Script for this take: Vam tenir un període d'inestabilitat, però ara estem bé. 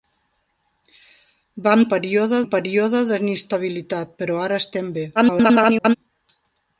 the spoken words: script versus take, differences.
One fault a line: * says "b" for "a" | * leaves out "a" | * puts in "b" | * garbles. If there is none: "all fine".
* says "període" for "tenir"
* garbles